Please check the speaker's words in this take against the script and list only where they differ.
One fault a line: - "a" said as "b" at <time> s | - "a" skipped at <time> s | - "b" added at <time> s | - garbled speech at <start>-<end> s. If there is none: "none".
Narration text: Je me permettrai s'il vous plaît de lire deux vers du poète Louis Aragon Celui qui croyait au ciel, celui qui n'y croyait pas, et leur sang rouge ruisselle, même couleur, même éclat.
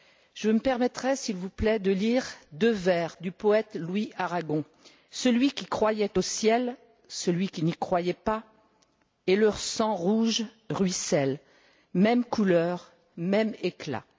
none